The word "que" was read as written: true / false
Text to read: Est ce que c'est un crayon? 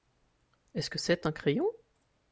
true